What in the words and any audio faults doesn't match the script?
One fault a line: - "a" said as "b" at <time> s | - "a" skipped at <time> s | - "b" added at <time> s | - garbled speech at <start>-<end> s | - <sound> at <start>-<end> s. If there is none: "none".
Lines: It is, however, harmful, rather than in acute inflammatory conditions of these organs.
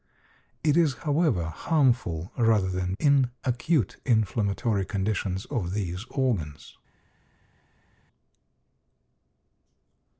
none